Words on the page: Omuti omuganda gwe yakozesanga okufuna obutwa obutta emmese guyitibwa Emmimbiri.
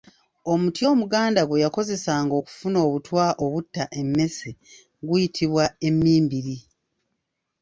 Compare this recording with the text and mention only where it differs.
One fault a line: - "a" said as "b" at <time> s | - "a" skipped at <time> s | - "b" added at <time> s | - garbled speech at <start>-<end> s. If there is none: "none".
none